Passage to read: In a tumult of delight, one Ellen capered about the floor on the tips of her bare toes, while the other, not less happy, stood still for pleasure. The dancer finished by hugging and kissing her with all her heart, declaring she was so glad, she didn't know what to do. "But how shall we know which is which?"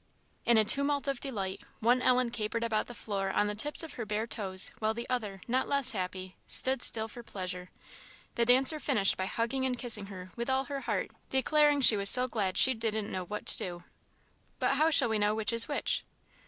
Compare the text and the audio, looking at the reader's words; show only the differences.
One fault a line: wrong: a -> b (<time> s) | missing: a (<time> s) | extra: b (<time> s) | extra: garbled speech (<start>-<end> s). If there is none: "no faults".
no faults